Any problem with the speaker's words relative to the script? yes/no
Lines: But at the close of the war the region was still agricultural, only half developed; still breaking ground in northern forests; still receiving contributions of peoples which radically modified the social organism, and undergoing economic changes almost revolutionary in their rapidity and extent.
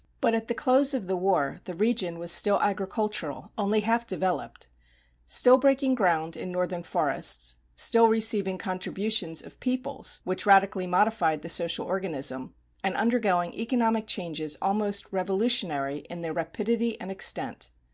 no